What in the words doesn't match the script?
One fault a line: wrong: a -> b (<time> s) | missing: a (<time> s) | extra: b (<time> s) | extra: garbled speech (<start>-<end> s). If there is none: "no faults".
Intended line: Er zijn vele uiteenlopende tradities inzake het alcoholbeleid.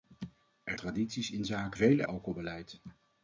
missing: zijn vele uiteenlopende (0.8 s)
wrong: het -> vele (1.7 s)